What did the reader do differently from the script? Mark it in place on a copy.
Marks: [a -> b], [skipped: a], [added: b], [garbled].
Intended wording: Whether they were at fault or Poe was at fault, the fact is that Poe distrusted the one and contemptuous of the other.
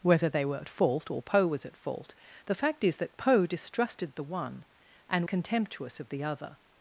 Whether they were at fault or Poe was at fault, the fact is that Poe distrusted the one and contemptuous of the other.